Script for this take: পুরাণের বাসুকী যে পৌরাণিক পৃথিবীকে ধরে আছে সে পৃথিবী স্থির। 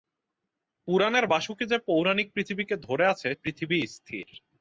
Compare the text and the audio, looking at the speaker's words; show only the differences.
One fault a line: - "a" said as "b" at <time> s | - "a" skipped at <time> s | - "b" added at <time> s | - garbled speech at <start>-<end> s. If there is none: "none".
- "সে" skipped at 3.3 s